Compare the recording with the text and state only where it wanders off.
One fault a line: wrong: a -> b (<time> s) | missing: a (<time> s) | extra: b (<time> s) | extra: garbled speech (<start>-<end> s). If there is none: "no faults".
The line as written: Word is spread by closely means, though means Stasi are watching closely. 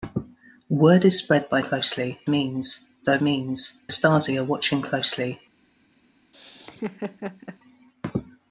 no faults